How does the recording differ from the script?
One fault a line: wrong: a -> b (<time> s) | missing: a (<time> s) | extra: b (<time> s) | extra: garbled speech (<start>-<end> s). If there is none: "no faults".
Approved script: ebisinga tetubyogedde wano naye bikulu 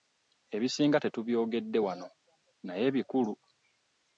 no faults